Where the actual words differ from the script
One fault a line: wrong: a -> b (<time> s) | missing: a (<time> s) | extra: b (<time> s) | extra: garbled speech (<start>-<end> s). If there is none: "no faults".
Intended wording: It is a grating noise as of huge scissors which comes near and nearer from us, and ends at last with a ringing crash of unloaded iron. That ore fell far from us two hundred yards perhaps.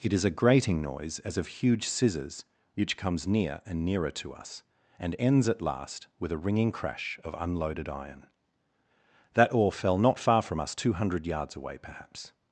wrong: from -> to (4.1 s)
extra: not (10.0 s)
extra: away (11.6 s)